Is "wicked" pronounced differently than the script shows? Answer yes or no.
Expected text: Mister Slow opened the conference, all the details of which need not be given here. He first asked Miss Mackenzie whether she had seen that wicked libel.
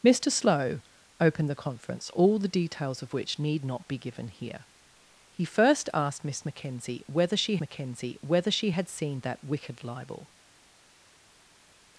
no